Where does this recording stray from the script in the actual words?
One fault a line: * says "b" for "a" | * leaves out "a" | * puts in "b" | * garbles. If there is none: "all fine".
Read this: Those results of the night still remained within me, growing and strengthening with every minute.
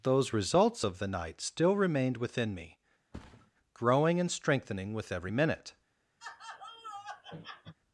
all fine